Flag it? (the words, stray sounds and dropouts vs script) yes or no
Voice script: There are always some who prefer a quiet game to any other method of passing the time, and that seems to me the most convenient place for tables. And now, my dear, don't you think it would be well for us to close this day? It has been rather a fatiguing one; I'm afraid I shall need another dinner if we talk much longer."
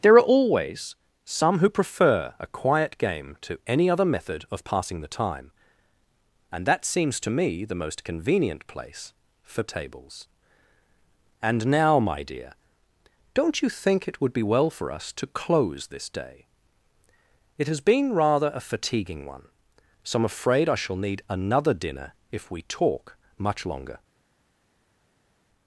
yes